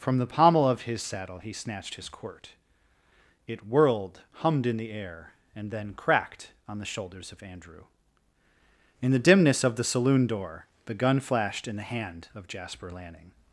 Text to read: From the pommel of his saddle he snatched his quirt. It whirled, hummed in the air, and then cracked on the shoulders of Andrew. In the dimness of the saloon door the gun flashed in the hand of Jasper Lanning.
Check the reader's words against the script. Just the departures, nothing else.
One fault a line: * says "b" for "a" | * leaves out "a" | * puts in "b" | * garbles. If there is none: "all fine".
all fine